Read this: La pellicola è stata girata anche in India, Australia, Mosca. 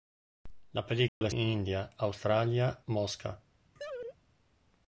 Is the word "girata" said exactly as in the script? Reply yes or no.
no